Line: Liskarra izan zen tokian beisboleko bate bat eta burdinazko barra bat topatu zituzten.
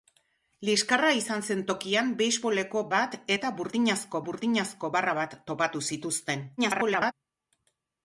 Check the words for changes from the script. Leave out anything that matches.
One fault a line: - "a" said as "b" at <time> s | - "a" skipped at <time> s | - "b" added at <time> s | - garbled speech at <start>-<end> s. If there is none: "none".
- "bate" skipped at 2.8 s
- "burdinazko" added at 4.3 s
- garbled speech at 6.6-7.1 s